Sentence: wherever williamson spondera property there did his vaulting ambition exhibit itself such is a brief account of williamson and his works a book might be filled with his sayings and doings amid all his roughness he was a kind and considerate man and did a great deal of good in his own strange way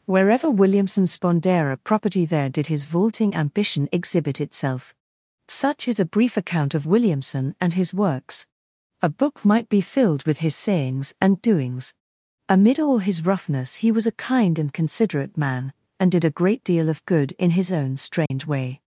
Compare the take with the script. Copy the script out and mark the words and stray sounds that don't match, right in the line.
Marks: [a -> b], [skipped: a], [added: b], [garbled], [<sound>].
wherever williamson spondera property there did his vaulting ambition exhibit itself such is a brief account of williamson and his works a book might be filled with his sayings and doings amid all his roughness he was a kind and considerate man and did a great deal of good in his own strange [dropout] way